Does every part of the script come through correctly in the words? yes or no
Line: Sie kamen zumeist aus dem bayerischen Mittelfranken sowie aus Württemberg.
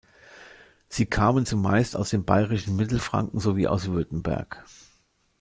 yes